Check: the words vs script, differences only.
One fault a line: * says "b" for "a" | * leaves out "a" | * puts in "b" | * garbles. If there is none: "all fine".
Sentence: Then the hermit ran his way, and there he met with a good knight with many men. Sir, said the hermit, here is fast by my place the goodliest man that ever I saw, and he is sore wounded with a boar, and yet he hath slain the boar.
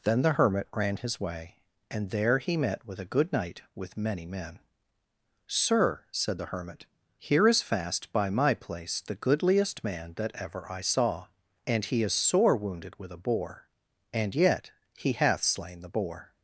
all fine